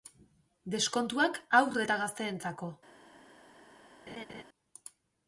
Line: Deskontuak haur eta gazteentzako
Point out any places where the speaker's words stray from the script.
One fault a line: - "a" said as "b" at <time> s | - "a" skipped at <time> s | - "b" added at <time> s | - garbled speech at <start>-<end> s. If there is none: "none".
none